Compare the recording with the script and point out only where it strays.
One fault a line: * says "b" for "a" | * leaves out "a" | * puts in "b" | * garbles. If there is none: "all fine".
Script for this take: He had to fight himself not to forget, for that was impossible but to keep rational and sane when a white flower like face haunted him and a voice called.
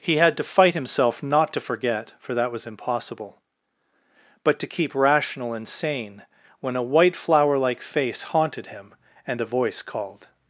all fine